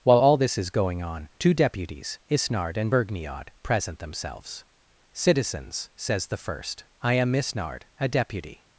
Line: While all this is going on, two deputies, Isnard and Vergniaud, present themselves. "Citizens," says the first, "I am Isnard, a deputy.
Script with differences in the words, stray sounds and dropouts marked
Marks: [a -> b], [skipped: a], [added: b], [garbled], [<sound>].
While all this is going on, two deputies, Isnard and Vergniaud, present themselves. "Citizens," says the first, "I am Isnard, a deputy.